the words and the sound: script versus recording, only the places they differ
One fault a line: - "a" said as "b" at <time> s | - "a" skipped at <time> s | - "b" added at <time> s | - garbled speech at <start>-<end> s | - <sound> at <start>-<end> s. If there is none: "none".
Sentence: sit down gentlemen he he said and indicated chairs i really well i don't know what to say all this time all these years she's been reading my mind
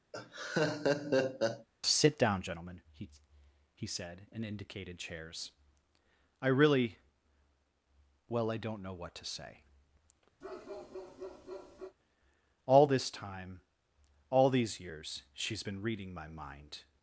- laugh at 0.1-1.7 s
- bark at 10.4-12.0 s